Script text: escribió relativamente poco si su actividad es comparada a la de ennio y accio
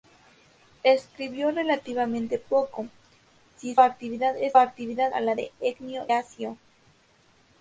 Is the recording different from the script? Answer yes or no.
yes